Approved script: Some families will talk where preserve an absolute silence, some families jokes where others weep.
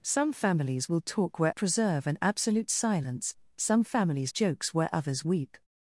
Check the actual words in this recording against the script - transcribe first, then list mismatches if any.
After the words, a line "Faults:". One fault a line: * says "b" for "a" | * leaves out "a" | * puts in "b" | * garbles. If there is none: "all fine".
Some families will talk where preserve an absolute silence, some families jokes where others weep.
Faults:
all fine